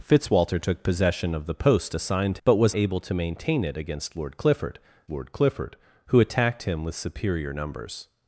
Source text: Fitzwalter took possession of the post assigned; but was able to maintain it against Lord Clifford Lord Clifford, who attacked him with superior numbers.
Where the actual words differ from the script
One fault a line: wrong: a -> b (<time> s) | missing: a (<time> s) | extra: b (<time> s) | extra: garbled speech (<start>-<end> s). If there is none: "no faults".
no faults